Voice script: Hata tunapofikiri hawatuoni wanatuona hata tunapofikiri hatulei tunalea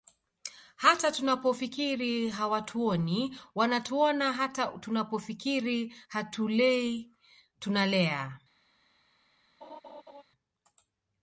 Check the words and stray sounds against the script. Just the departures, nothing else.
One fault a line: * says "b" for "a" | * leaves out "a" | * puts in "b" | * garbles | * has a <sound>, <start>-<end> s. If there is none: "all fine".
* has a laugh, 9.6-10.2 s